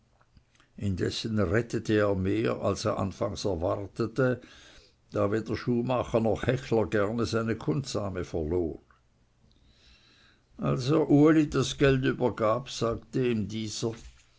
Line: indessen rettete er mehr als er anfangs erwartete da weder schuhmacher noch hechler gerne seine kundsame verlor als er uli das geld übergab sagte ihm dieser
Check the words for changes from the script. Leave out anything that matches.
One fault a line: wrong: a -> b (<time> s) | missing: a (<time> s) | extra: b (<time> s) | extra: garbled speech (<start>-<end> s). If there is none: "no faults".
no faults